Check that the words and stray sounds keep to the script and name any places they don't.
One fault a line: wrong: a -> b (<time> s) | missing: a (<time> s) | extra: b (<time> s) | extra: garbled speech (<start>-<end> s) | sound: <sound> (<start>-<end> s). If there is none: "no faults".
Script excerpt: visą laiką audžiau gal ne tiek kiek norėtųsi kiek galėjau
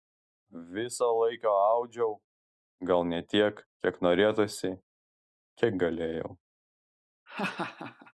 sound: laugh (7.3-8.1 s)